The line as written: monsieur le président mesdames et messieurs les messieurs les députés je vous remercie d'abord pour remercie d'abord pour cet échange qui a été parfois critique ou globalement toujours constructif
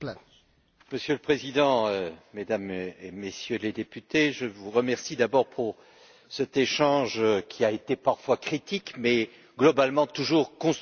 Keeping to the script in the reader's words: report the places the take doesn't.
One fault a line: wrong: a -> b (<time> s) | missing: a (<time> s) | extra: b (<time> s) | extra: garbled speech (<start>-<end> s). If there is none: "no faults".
missing: messieurs les (3.7 s)
missing: remercie d'abord pour (5.8 s)
wrong: ou -> mais (9.0 s)